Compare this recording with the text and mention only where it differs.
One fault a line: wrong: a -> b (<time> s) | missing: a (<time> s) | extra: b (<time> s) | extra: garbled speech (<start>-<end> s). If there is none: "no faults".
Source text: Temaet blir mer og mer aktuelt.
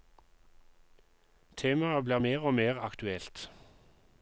no faults